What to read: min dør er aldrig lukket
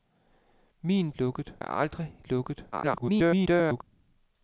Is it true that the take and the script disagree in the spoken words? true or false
true